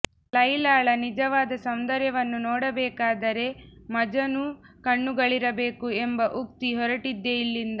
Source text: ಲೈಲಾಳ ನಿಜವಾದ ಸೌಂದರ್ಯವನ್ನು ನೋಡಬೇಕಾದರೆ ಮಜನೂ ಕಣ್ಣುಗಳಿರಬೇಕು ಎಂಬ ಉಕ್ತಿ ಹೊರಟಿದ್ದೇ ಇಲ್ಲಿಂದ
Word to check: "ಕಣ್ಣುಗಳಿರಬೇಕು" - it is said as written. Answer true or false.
true